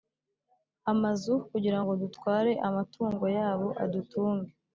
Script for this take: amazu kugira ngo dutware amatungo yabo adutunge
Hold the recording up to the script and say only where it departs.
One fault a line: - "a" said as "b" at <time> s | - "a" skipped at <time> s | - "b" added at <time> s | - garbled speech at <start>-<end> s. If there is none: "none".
none